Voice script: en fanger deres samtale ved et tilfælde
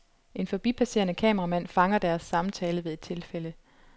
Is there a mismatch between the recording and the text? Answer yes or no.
yes